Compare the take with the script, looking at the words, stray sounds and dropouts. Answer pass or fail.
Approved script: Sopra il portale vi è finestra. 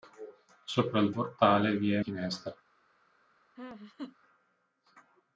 fail